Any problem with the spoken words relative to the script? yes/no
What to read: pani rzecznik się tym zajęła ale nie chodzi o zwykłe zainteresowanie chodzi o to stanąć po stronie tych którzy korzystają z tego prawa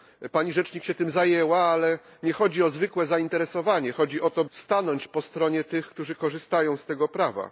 no